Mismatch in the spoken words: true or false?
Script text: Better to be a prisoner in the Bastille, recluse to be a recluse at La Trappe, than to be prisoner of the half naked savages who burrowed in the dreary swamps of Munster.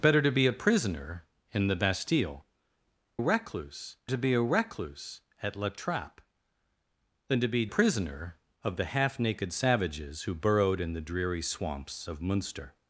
false